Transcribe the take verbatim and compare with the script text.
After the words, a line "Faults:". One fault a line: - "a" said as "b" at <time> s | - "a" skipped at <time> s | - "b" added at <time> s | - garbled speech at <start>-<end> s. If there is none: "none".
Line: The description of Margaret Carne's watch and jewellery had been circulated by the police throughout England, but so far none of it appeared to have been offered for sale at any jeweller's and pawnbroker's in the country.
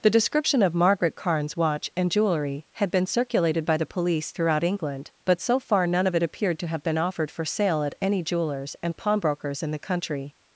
The description of Margaret Carne's watch and jewellery had been circulated by the police throughout England, but so far none of it appeared to have been offered for sale at any jeweller's and pawnbroker's in the country.
Faults:
none